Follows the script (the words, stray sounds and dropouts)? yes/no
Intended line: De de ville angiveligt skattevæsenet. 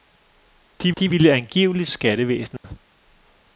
no